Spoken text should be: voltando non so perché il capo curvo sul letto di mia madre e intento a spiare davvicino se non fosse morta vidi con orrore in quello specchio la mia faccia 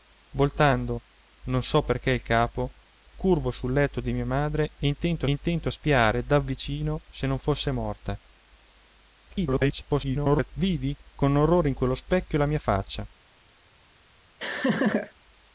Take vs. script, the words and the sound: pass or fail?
fail